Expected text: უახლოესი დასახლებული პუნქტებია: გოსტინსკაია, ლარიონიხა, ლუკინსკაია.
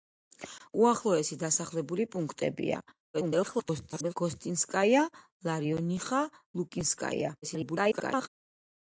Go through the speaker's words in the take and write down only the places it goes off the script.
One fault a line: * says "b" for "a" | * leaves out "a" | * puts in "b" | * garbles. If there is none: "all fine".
* garbles
* garbles